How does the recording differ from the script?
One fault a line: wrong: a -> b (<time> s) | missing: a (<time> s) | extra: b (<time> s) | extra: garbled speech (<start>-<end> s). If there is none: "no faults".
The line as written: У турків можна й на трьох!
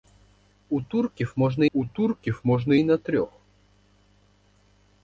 extra: у турків можна (1.7 s)